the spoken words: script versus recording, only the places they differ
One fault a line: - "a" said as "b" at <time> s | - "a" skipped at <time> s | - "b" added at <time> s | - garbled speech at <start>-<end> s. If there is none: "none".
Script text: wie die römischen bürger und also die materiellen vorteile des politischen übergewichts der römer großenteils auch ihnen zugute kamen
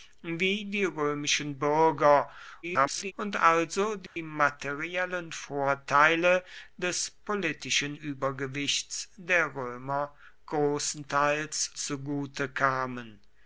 - garbled speech at 2.6-3.1 s
- "auch ihnen" skipped at 11.7 s